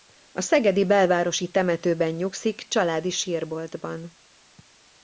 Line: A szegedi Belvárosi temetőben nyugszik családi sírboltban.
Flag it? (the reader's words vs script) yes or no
no